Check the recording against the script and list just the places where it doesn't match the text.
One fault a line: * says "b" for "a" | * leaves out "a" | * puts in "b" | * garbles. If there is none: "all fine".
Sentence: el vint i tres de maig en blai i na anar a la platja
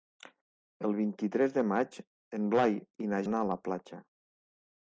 all fine